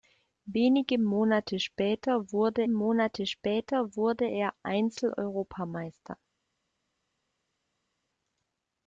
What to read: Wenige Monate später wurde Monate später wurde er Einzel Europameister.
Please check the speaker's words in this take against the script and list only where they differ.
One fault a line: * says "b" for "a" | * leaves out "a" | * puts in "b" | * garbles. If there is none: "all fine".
all fine